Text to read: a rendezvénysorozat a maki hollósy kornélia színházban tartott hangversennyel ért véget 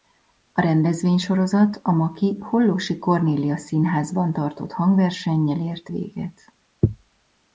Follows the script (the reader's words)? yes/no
yes